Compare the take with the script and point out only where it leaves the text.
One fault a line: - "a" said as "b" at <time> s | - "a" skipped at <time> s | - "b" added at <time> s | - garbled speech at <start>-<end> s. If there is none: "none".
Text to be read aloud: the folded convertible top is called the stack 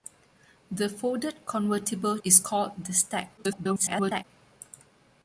- "top" skipped at 2.2 s
- garbled speech at 3.4-4.2 s